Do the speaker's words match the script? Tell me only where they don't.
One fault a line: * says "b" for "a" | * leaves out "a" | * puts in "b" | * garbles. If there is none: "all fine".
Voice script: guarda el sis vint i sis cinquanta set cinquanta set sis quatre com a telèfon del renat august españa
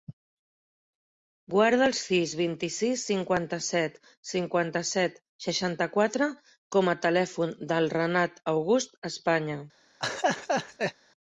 * says "seixanta" for "sis"